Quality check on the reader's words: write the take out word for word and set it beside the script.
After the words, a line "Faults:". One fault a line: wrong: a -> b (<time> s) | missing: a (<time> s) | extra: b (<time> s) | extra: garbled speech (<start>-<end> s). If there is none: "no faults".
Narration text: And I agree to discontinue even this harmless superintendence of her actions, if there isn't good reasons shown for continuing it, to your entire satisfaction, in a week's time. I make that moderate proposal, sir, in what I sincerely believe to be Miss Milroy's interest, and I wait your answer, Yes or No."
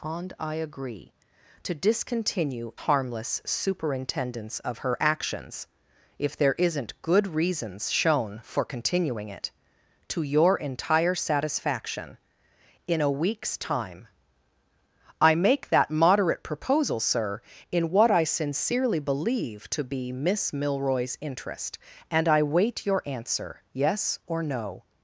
And I agree to discontinue harmless superintendence of her actions, if there isn't good reasons shown for continuing it, to your entire satisfaction, in a week's time. I make that moderate proposal, sir, in what I sincerely believe to be Miss Milroy's interest, and I wait your answer, Yes or No."
Faults:
missing: even this (2.7 s)